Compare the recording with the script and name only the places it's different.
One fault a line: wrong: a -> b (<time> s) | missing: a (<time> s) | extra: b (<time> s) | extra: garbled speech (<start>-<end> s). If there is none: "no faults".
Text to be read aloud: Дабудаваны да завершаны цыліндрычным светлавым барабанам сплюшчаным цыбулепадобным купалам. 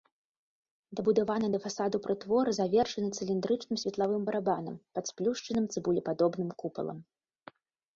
extra: фасаду прытвор (1.6 s)
extra: пад (4.9 s)